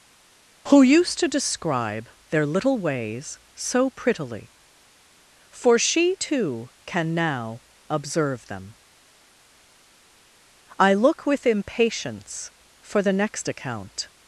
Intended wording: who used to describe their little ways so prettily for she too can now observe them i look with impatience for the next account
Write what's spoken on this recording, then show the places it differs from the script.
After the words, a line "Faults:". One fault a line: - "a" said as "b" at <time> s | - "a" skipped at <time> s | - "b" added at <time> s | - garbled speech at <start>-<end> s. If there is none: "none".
who used to describe their little ways so prettily for she too can now observe them i look with impatience for the next account
Faults:
none